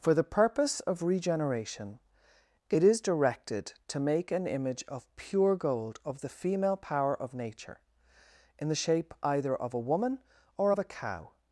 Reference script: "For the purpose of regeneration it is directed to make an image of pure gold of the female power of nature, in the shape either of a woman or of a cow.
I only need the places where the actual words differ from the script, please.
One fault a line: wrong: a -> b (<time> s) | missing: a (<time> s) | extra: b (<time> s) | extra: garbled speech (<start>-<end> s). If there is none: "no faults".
no faults